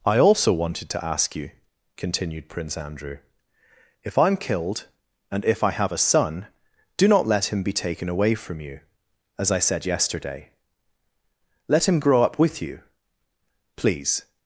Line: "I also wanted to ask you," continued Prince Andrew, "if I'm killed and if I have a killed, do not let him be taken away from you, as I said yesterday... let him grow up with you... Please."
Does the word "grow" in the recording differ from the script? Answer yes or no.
no